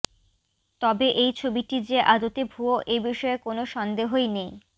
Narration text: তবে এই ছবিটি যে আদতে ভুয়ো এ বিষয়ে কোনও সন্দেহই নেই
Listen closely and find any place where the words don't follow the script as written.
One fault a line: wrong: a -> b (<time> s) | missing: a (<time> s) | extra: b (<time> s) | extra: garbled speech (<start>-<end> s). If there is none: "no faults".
no faults